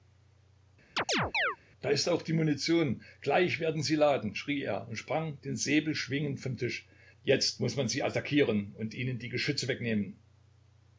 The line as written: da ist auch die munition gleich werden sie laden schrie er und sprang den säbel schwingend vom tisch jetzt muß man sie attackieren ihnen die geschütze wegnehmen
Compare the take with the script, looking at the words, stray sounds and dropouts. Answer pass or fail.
fail